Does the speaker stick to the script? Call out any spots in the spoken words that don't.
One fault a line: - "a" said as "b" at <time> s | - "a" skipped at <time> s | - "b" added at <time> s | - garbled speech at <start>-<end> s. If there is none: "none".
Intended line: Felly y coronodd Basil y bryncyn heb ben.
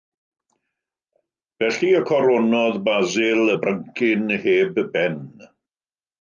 none